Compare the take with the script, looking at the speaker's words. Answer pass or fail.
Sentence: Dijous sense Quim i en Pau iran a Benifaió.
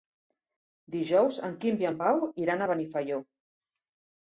fail